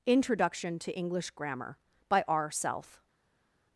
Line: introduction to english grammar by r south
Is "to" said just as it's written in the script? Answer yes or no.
yes